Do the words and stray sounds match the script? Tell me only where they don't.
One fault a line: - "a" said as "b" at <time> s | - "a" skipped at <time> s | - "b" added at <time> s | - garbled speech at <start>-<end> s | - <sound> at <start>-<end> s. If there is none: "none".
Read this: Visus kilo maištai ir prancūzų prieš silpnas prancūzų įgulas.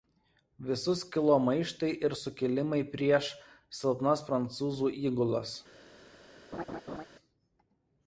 - "prancūzų" said as "sukilimai" at 2.2 s
- laugh at 6.5-7.0 s